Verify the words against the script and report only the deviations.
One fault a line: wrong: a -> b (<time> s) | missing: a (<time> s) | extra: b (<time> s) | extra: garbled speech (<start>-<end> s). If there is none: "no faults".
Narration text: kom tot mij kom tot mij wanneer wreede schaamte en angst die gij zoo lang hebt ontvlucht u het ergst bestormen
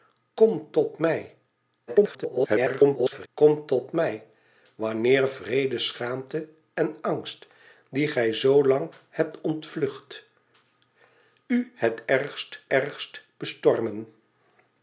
extra: garbled speech (1.9-3.3 s)
extra: ergst (12.7 s)